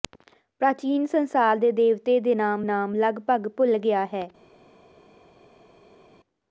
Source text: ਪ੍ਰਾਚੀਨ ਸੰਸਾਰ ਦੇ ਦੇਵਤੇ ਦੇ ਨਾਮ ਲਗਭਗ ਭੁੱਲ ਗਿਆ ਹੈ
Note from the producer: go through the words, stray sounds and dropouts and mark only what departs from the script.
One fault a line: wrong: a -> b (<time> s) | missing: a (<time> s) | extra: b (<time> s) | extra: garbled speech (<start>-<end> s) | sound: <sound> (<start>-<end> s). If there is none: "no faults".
extra: ਨਾਮ (2.6 s)